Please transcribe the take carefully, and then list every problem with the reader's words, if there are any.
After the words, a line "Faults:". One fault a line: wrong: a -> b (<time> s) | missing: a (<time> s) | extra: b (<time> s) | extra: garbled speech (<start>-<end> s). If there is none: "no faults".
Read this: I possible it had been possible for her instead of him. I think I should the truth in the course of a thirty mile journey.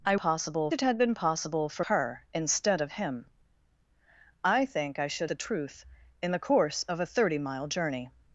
I possible it had been possible for her instead of him. I think I should the truth in the course of a thirty mile journey.
Faults:
no faults